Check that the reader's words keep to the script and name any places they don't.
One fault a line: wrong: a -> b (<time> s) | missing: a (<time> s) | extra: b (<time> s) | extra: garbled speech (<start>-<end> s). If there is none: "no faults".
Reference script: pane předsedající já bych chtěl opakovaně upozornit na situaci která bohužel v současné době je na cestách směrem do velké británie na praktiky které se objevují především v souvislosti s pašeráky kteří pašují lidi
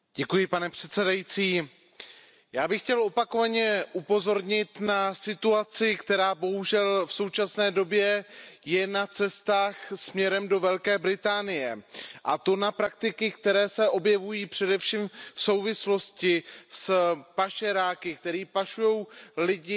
extra: a to (12.2 s)